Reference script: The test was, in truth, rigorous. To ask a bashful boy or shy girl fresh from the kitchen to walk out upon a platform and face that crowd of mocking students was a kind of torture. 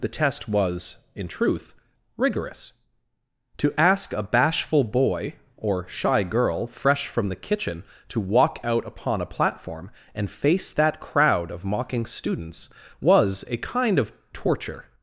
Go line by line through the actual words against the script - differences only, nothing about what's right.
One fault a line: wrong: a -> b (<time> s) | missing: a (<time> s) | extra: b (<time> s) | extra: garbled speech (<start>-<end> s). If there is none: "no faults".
no faults